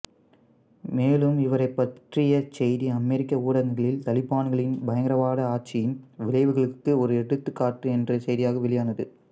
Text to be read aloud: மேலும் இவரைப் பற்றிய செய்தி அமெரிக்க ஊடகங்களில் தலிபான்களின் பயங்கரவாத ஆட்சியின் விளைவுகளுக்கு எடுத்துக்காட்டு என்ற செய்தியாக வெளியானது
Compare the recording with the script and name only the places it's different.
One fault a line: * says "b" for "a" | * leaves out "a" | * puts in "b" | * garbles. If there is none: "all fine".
* puts in "ஒரு"